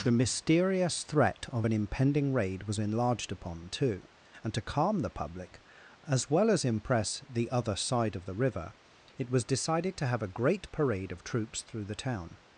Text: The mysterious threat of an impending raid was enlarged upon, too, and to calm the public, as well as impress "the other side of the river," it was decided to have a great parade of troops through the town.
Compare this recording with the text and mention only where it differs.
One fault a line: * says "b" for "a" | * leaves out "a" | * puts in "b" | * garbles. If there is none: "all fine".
all fine